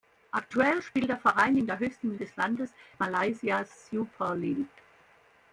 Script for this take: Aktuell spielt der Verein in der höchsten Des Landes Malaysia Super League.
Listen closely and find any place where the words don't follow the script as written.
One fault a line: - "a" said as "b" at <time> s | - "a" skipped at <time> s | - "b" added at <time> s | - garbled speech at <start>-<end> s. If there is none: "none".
none